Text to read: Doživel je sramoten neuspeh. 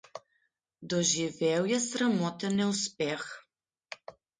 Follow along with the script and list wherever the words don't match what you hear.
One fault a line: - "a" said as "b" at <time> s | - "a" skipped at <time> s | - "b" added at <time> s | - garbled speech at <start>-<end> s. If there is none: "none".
none